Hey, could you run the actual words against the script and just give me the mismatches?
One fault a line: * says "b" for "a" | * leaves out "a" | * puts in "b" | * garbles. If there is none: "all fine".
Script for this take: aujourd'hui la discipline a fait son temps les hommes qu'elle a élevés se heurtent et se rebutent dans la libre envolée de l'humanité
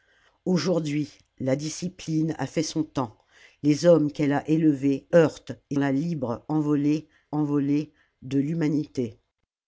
* leaves out "se"
* leaves out "se rebutent dans"
* puts in "envolée"